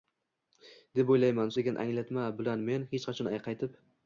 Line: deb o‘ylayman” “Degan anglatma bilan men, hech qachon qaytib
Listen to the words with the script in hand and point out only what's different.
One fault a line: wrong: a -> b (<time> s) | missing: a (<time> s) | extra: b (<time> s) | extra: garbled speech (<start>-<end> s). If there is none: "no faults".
no faults